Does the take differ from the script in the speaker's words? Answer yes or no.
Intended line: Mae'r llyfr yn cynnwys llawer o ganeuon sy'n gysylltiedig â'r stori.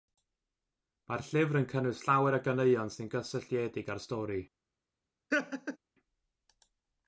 no